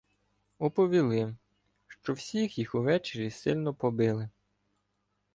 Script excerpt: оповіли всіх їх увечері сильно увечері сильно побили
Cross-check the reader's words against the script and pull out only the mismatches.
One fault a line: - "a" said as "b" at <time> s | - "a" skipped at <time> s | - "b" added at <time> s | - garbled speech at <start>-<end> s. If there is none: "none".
- "що" added at 1.9 s
- "увечері сильно" skipped at 3.7 s